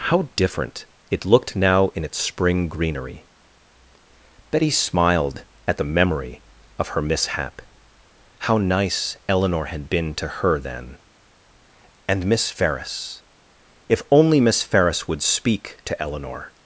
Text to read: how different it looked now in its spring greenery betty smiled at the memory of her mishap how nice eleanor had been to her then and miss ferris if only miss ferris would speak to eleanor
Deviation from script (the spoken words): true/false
false